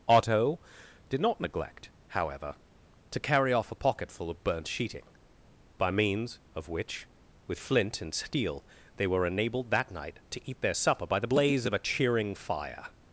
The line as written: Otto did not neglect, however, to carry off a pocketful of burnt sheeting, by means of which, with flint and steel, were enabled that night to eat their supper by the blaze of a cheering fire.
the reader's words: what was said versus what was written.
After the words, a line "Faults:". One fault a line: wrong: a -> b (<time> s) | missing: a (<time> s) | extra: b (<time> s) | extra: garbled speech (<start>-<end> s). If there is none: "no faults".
Otto did not neglect, however, to carry off a pocketful of burnt sheeting, by means of which, with flint and steel, they were enabled that night to eat their supper by the blaze of a cheering fire.
Faults:
extra: they (8.9 s)